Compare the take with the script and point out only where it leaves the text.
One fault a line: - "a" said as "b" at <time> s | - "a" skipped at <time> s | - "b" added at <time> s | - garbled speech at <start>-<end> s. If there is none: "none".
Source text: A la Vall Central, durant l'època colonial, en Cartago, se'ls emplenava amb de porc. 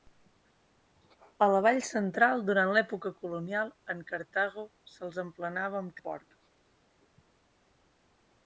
none